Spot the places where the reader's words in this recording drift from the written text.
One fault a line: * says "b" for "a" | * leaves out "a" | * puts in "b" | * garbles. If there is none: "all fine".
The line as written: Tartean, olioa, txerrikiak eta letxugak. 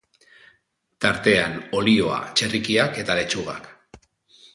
all fine